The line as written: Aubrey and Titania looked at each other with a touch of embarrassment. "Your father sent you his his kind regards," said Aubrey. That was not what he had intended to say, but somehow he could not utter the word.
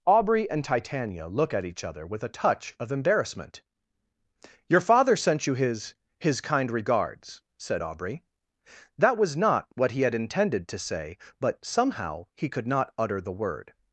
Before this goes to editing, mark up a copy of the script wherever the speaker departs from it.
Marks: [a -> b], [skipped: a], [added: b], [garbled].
Aubrey and Titania [looked -> look] at each other with a touch of embarrassment. "Your father sent you his his kind regards," said Aubrey. That was not what he had intended to say, but somehow he could not utter the word.